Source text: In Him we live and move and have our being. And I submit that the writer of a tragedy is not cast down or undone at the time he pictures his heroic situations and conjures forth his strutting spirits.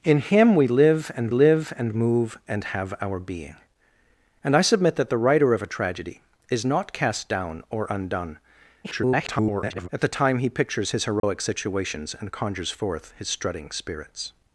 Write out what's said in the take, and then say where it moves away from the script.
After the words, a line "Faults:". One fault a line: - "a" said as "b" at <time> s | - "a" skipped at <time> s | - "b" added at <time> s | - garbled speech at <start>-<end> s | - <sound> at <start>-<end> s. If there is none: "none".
In Him we live and live and move and have our being. And I submit that the writer of a tragedy is not cast down or undone [garbled] at the time he pictures his heroic situations and conjures forth his strutting spirits.
Faults:
- "live and" added at 1.3 s
- garbled speech at 8.8-9.9 s
- dropout at 11.2-11.2 s